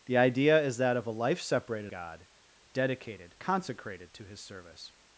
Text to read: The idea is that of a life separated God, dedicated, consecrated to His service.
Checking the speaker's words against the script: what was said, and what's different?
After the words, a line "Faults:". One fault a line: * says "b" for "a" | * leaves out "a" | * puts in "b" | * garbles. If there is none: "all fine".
The idea is that of a life separated God, dedicated, consecrated to His service.
Faults:
all fine